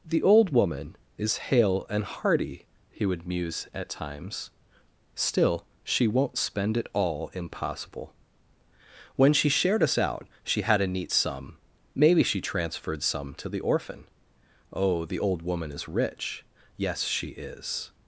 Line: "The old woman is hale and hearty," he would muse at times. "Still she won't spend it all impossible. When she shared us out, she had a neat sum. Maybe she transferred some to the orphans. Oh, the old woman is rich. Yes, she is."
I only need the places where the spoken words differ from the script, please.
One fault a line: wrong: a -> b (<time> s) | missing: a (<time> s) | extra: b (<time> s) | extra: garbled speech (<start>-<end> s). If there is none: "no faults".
wrong: orphans -> orphan (13.6 s)